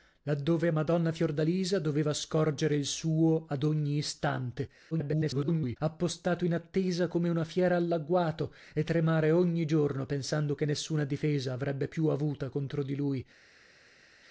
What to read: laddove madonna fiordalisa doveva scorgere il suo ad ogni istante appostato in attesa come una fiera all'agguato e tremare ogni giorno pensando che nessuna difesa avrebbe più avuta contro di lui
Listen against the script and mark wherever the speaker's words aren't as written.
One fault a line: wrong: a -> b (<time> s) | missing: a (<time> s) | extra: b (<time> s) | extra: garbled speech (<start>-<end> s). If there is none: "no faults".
extra: garbled speech (4.9-5.8 s)